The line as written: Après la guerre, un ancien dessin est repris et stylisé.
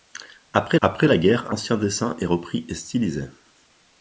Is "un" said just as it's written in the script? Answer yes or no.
no